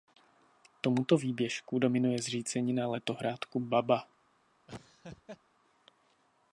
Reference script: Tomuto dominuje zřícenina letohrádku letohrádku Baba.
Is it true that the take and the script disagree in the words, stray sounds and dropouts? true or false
true